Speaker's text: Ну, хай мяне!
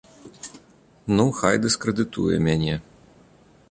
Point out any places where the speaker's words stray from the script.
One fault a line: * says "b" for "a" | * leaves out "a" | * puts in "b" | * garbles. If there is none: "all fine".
* puts in "дыскрэдытуе"